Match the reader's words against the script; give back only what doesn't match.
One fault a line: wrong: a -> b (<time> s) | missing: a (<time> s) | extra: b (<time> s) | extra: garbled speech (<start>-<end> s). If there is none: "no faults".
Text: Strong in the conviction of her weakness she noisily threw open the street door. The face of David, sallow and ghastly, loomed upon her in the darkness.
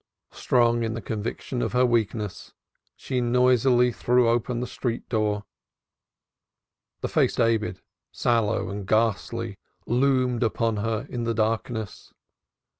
missing: of (7.4 s)